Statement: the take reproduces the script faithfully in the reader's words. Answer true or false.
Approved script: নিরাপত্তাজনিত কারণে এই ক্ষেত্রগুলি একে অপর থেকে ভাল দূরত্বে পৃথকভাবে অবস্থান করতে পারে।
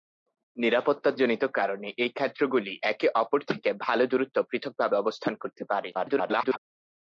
false